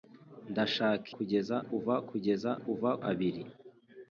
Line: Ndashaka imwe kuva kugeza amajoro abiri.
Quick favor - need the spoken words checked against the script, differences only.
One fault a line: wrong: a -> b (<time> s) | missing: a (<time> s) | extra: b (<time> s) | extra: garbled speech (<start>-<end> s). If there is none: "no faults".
wrong: imwe -> kugeza (1.2 s)
wrong: amajoro -> kuva (2.6 s)